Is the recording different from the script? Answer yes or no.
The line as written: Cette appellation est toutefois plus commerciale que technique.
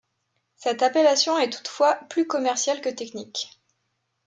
no